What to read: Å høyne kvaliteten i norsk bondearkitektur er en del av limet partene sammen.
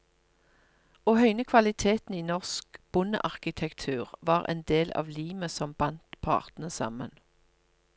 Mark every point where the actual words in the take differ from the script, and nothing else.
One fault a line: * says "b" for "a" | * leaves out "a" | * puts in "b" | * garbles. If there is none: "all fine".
* says "var" for "er"
* puts in "som bandt"